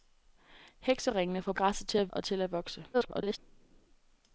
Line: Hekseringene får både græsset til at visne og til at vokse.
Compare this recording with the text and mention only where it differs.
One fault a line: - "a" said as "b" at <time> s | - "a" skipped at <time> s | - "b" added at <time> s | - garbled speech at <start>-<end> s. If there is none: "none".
- "både" skipped at 1.5 s
- "visne" skipped at 2.1 s
- garbled speech at 2.9-3.4 s